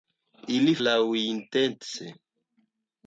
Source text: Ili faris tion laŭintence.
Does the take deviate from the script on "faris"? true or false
true